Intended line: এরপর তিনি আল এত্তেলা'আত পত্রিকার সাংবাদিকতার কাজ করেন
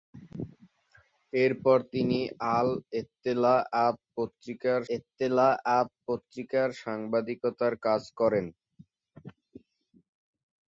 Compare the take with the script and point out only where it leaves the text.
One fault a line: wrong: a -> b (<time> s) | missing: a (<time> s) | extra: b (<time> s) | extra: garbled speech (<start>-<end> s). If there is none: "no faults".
extra: এত্তেলা'আত পত্রিকার (4.9 s)